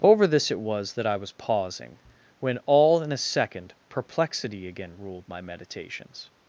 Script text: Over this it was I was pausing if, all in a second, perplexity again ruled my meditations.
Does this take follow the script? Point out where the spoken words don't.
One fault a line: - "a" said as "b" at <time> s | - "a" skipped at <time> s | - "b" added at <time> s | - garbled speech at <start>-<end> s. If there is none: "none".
- "that" added at 0.9 s
- "if" said as "when" at 2.4 s